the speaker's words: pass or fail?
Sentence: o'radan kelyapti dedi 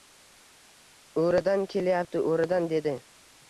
fail